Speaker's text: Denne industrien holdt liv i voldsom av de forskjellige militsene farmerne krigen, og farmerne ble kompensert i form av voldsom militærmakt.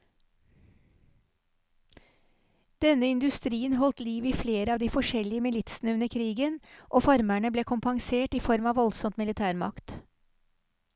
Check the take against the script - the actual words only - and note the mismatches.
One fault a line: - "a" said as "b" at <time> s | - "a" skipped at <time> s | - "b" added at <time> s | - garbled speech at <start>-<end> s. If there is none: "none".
- "voldsom" said as "flere" at 4.3 s
- "farmerne" said as "under" at 6.0 s